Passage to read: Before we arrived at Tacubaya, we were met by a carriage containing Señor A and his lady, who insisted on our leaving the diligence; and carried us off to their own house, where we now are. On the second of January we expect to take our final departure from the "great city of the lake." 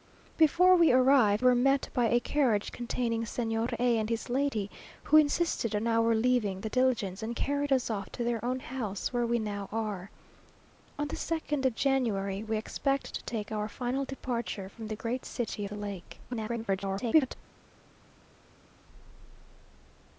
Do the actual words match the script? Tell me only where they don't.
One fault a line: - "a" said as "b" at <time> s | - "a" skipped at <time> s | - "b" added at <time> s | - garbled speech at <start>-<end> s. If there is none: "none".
- "at Tacubaya we" skipped at 1.4 s
- "of" skipped at 15.6 s
- garbled speech at 16.3-17.4 s